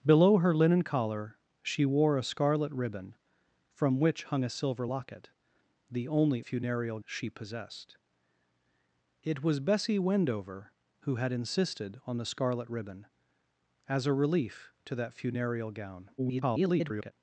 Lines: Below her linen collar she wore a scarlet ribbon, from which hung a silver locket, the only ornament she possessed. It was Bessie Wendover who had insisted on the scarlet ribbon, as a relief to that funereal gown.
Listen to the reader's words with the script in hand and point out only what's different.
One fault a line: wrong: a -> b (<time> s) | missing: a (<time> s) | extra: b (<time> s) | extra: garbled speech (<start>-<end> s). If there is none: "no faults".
wrong: ornament -> funereal (6.4 s)
extra: garbled speech (16.2-17.1 s)